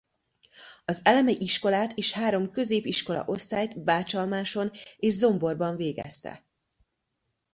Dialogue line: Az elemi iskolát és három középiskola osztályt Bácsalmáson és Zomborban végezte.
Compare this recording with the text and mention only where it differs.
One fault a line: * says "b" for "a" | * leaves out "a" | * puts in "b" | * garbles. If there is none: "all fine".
all fine